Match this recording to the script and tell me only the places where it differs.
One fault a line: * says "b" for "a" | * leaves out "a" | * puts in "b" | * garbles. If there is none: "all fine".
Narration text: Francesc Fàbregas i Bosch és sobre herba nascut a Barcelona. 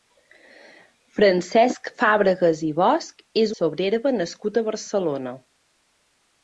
all fine